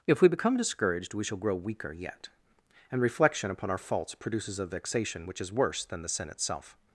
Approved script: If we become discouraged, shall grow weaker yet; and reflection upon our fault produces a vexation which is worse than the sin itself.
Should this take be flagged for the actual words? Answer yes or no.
yes